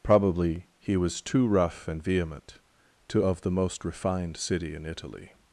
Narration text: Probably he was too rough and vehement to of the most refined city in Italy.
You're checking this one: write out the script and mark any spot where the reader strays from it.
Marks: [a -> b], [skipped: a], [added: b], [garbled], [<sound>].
Probably he was too rough and vehement to of the most refined city in Italy.